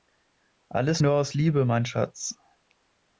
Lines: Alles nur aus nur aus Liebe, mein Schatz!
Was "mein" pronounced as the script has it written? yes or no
yes